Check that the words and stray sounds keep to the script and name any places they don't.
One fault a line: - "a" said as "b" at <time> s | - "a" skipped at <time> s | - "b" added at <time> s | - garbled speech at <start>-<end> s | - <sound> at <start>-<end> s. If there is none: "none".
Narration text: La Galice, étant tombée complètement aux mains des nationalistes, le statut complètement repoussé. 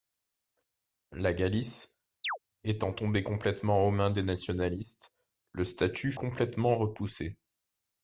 - chirp at 2.2-2.4 s